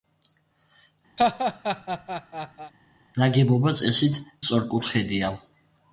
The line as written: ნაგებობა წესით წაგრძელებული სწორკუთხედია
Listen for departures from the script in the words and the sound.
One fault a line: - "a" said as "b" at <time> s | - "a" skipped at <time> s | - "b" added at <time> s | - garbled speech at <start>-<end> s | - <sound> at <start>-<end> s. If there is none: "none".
- laugh at 1.2-2.7 s
- "წაგრძელებული" skipped at 4.2 s